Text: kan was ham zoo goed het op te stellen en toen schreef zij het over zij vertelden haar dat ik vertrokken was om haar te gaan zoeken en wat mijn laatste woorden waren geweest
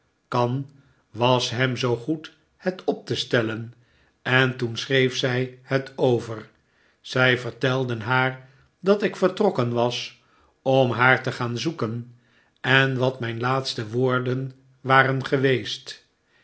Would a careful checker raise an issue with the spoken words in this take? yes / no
no